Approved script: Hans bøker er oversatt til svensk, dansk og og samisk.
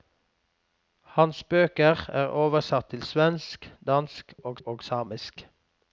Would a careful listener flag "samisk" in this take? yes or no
no